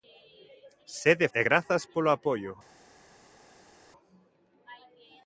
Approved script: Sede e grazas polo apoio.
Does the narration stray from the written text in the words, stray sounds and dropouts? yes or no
no